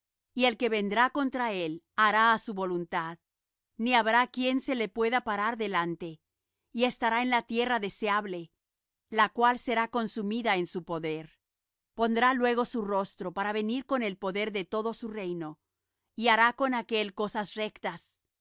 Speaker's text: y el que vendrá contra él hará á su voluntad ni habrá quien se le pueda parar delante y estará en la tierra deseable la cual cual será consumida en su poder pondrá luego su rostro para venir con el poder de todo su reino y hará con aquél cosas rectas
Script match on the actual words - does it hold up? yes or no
no